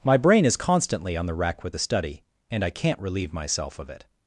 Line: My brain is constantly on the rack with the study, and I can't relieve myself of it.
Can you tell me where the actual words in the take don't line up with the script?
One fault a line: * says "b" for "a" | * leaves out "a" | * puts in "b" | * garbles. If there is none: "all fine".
all fine